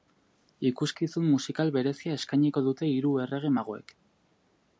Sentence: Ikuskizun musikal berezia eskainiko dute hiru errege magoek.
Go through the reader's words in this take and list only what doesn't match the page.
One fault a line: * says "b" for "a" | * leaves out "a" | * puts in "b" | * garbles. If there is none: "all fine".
all fine